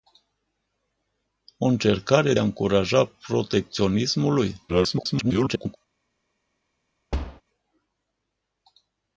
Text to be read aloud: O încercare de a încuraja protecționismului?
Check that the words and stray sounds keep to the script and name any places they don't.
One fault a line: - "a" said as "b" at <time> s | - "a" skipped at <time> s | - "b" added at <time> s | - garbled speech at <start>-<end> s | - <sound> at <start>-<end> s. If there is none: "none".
- "de" skipped at 2.3 s
- garbled speech at 4.7-5.8 s
- thud at 7.1-7.4 s